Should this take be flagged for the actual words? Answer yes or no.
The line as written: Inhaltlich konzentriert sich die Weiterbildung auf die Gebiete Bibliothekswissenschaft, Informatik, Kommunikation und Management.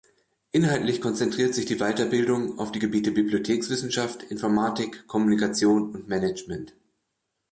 no